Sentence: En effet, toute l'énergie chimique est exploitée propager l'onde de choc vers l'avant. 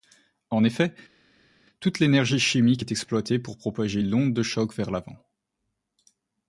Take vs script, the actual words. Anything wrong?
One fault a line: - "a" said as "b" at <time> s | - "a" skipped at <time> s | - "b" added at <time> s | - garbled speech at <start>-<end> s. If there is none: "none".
- "pour" added at 3.4 s